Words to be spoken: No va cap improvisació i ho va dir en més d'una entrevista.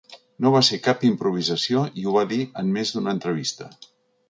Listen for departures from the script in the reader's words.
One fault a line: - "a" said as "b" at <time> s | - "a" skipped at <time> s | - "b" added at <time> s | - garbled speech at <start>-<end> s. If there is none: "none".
- "ser" added at 0.7 s